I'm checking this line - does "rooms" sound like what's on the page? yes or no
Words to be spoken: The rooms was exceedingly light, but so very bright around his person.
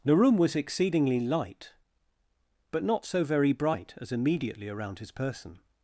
no